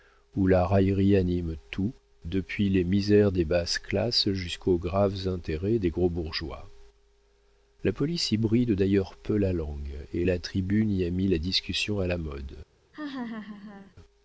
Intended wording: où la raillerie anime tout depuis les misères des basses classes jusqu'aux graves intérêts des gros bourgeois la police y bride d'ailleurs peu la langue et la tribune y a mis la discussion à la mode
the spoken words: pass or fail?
pass